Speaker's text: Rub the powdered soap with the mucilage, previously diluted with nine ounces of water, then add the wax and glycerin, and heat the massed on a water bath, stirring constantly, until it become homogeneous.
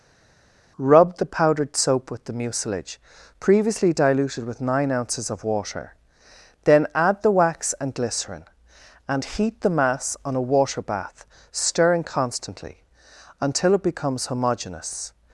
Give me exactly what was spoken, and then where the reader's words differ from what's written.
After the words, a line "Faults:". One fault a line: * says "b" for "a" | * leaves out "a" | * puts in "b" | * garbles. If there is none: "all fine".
Rub the powdered soap with the mucilage, previously diluted with nine ounces of water, then add the wax and glycerin, and heat the mass on a water bath, stirring constantly, until it becomes homogeneous.
Faults:
* says "mass" for "massed"
* says "becomes" for "become"